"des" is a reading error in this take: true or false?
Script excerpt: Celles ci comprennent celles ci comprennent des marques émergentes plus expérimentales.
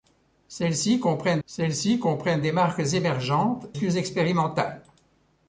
false